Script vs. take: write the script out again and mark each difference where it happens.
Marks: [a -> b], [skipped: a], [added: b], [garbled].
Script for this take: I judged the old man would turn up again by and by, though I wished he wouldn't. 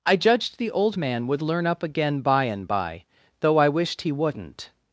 I judged the old man would [turn -> learn] up again by and by, though I wished he wouldn't.